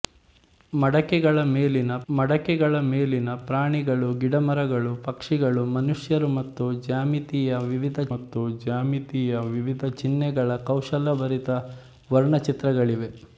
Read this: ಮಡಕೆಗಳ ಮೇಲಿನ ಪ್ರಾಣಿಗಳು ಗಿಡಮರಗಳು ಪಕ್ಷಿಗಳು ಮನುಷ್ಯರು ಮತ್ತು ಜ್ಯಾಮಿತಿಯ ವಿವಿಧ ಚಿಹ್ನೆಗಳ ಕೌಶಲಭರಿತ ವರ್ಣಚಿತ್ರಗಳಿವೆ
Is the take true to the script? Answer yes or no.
no